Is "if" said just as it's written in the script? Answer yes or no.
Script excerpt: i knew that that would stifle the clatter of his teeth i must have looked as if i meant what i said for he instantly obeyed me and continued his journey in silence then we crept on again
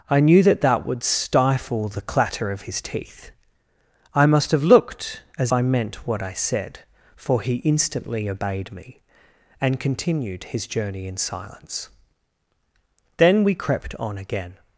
no